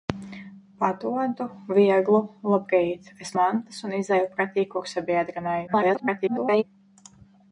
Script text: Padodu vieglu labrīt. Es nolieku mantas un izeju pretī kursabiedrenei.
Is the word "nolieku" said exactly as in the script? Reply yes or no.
no